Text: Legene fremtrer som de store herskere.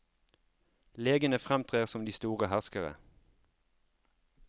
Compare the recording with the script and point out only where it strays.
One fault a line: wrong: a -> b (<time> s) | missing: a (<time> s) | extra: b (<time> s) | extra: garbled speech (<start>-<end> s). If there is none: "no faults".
no faults